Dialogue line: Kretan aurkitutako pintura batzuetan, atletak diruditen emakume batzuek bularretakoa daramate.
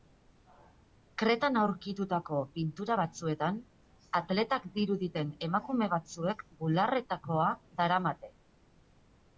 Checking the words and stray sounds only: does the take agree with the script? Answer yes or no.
yes